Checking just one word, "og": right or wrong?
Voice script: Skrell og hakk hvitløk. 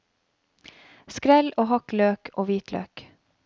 right